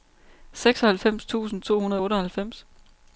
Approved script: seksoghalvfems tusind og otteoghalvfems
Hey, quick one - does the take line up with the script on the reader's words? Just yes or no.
no